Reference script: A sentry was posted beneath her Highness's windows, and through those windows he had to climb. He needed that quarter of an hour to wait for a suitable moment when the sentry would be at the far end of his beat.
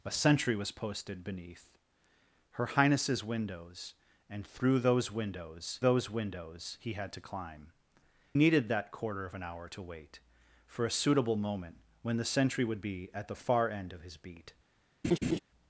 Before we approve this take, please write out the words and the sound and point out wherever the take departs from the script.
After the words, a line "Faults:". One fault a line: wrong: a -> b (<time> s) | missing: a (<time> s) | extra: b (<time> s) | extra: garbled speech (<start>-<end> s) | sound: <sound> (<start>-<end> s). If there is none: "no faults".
A sentry was posted beneath her Highness's windows, and through those windows those windows he had to climb. Needed that quarter of an hour to wait for a suitable moment when the sentry would be at the far end of his beat.
Faults:
extra: those windows (5.8 s)
missing: He (7.7 s)
sound: laugh (15.0-15.4 s)